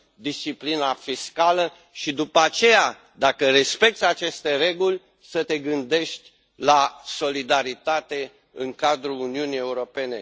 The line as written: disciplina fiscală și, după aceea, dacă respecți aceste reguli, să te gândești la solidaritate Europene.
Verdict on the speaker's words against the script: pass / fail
fail